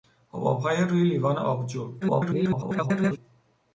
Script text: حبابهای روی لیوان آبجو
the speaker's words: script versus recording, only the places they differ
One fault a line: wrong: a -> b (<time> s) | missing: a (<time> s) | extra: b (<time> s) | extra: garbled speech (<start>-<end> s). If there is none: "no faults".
extra: garbled speech (2.0-3.2 s)